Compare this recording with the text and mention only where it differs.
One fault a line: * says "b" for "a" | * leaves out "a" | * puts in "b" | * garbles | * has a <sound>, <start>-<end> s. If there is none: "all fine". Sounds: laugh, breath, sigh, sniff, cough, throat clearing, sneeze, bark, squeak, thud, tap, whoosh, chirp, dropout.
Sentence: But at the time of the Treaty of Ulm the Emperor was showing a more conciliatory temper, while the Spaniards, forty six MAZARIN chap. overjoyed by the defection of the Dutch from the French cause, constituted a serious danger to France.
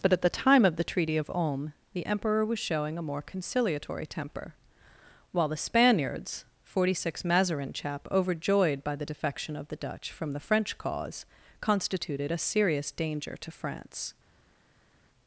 all fine